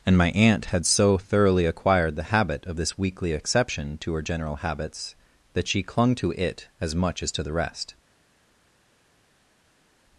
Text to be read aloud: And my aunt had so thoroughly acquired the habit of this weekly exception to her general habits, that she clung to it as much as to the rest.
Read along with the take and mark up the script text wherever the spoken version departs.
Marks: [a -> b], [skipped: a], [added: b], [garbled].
And my aunt had so thoroughly acquired the habit of this weekly exception to her general habits, that she clung to it as much as to the rest.